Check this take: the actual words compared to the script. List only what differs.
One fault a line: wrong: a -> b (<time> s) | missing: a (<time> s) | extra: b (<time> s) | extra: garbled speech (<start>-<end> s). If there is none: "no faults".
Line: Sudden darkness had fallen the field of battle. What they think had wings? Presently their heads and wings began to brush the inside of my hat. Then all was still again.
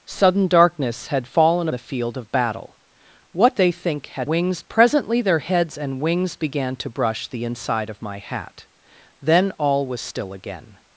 no faults